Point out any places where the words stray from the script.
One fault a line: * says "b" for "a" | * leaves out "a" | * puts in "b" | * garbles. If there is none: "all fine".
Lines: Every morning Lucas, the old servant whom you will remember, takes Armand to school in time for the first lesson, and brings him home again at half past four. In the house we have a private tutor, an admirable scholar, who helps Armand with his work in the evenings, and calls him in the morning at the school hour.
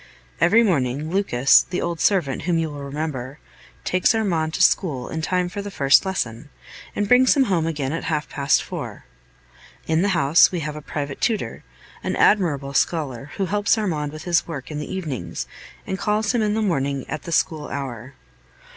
all fine